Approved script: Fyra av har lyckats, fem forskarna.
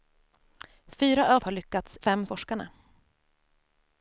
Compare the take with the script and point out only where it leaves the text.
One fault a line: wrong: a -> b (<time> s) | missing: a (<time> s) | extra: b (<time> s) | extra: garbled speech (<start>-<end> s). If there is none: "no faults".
no faults